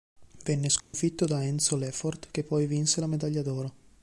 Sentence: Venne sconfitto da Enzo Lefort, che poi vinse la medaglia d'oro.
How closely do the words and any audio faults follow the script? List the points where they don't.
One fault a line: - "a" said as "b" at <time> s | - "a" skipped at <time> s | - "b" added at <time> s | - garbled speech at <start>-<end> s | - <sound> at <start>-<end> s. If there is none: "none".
- dropout at 0.8-0.9 s